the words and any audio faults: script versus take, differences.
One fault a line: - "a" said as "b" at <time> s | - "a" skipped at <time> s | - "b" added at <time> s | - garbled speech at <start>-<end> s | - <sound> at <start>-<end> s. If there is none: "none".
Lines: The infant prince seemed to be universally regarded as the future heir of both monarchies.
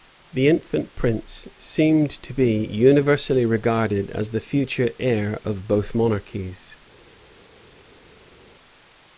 none